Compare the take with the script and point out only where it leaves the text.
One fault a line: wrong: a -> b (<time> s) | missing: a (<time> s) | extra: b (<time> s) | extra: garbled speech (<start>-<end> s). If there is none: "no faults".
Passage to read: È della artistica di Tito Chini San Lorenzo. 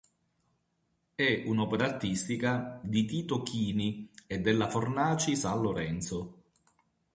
wrong: della -> un'opera (1.4 s)
extra: e della Fornaci (4.3 s)